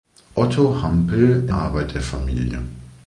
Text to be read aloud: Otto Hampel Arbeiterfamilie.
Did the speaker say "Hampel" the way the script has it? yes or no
yes